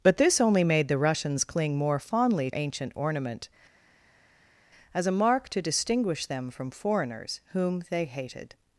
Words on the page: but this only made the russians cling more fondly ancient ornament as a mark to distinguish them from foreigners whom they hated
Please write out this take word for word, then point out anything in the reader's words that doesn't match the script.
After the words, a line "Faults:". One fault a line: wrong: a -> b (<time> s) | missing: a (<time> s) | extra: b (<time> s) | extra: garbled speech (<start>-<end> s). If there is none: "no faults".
but this only made the russians cling more fondly ancient ornament as a mark to distinguish them from foreigners whom they hated
Faults:
no faults